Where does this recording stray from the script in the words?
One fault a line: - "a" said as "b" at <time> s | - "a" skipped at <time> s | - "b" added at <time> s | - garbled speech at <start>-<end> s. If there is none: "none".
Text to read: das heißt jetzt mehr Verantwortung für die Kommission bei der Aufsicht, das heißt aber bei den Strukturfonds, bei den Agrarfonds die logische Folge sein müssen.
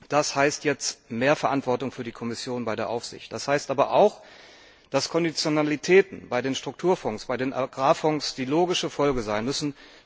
- "auch dass Konditionalitäten" added at 3.9 s